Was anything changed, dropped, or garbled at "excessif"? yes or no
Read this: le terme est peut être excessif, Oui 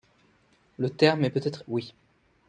yes